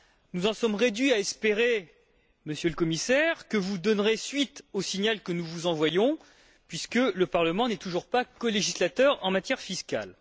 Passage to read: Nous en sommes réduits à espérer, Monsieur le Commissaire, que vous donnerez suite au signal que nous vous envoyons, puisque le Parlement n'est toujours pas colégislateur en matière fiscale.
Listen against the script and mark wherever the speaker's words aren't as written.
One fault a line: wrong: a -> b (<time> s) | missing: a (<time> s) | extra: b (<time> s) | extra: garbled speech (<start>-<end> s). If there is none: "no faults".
no faults